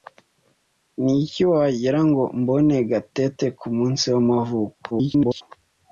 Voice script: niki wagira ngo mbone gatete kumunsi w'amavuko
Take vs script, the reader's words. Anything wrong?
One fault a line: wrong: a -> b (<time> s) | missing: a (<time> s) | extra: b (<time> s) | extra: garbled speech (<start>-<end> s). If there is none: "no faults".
extra: garbled speech (4.9-5.4 s)